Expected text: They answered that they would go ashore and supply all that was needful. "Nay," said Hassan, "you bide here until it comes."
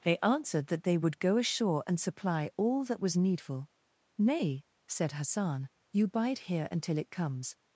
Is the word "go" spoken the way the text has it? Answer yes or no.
yes